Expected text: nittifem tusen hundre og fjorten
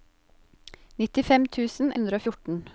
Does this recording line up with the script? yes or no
yes